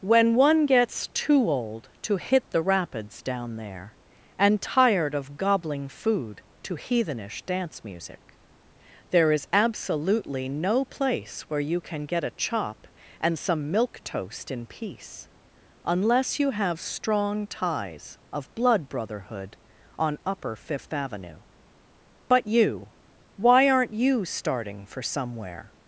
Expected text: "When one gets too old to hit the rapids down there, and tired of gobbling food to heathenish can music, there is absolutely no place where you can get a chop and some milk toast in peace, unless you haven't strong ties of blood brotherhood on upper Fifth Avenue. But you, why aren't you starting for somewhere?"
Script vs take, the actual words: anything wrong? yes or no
yes